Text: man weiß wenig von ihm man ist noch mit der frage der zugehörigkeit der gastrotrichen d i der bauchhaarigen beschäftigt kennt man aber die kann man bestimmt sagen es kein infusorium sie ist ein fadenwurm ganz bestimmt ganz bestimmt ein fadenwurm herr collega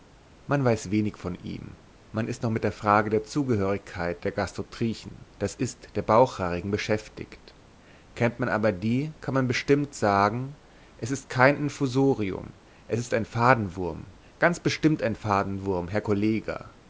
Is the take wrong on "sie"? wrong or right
wrong